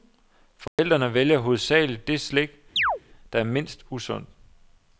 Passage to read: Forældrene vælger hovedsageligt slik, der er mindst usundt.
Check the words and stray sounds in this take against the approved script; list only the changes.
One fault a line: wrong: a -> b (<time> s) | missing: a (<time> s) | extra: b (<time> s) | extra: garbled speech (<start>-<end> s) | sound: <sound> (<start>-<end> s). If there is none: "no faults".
sound: dropout (0.7-0.8 s)
extra: det (2.1 s)
sound: chirp (2.8-3.0 s)